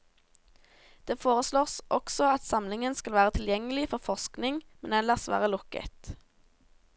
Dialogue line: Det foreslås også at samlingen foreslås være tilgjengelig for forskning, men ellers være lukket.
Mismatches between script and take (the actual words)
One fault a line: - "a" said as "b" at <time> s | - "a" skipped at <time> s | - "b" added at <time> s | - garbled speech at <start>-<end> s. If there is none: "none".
- "foreslås" said as "skal" at 3.0 s